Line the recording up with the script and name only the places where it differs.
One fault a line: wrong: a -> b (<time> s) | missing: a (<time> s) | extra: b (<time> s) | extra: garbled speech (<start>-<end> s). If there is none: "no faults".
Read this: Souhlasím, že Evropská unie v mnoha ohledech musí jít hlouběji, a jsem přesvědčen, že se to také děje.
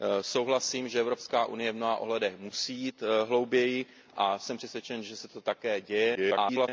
extra: garbled speech (6.1-6.7 s)